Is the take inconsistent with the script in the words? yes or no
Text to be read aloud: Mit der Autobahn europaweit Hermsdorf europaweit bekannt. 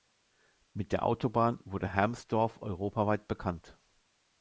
yes